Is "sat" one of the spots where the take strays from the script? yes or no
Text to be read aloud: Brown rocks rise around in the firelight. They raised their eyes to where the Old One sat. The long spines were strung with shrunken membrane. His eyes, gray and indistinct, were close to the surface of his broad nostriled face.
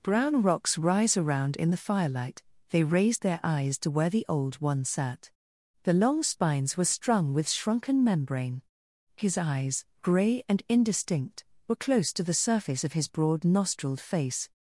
no